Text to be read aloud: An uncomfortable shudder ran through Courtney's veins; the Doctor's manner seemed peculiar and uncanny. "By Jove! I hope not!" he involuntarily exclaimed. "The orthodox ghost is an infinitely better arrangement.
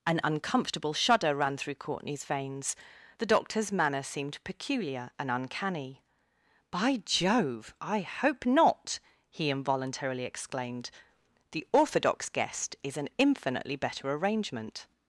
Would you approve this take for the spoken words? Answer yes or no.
no